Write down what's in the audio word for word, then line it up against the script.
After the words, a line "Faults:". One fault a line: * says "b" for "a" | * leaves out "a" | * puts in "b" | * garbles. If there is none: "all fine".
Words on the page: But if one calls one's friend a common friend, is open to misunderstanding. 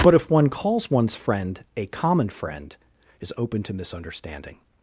But if one calls one's friend a common friend, is open to misunderstanding.
Faults:
all fine